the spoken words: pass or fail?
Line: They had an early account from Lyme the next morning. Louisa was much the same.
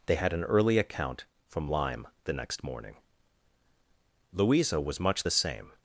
pass